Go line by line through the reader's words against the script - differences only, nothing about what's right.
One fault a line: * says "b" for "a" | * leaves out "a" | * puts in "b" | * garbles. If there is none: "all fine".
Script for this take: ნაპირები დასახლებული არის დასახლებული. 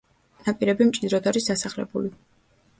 * says "მჭიდროდ" for "დასახლებული"